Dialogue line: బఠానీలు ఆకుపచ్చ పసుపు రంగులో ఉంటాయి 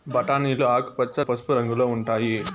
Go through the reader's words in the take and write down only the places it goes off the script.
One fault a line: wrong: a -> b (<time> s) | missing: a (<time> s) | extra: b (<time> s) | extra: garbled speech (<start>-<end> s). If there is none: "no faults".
no faults